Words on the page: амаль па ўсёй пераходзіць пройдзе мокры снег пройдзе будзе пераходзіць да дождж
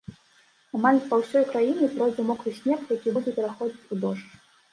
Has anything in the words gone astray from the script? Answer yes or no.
yes